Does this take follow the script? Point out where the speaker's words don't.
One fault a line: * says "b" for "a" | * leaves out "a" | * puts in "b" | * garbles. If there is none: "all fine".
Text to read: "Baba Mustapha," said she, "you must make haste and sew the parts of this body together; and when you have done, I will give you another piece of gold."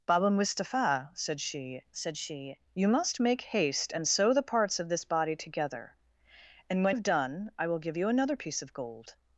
* puts in "said she"
* leaves out "you"